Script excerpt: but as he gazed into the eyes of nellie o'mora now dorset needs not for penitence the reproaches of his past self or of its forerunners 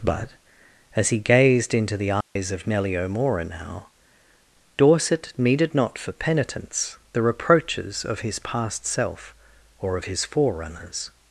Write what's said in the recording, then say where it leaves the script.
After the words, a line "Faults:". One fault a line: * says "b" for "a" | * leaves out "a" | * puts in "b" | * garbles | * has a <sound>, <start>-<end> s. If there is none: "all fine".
but as he gazed into the eyes of nellie o'mora now dorset needed not for penitence the reproaches of his past self or of his forerunners
Faults:
* has a dropout, 2.2-2.4 s
* says "needed" for "needs"
* says "his" for "its"